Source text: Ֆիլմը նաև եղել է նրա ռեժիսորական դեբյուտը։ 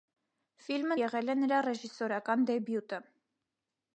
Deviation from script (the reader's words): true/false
true